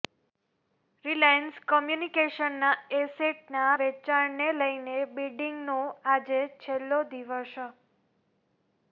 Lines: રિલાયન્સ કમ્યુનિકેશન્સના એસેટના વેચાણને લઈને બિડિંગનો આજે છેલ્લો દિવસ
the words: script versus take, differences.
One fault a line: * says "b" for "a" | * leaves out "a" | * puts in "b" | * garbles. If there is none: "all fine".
all fine